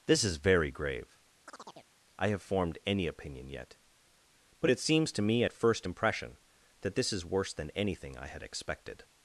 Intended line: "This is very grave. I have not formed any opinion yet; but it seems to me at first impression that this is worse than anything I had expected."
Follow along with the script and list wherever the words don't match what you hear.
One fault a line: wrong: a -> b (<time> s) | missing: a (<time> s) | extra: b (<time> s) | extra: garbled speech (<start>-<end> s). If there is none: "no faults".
missing: not (2.4 s)